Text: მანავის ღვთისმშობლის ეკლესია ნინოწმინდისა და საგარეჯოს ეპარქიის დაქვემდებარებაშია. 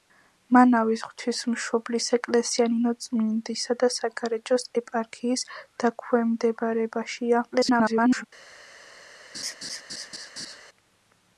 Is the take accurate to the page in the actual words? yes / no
no